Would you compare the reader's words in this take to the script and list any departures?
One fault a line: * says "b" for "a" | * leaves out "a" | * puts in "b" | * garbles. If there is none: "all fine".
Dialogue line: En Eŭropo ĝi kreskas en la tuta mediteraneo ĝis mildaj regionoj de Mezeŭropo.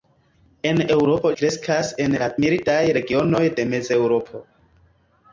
* leaves out "ĝi"
* leaves out "tuta mediteraneo ĝis"